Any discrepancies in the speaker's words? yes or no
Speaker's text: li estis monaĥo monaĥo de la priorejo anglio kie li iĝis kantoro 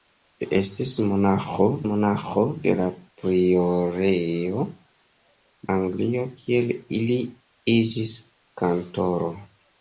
no